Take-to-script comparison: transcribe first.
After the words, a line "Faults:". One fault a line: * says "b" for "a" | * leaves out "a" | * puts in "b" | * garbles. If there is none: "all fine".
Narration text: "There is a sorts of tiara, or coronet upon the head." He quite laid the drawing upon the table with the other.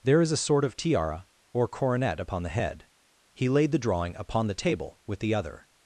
"There is a sort of tiara, or coronet upon the head." He laid the drawing upon the table with the other.
Faults:
* says "sort" for "sorts"
* leaves out "quite"